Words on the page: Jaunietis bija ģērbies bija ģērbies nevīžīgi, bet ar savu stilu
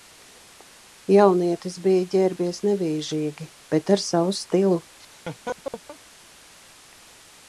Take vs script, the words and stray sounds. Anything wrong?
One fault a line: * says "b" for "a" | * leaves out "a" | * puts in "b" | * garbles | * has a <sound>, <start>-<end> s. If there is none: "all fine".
* leaves out "bija ģērbies"
* has a laugh, 5.0-6.0 s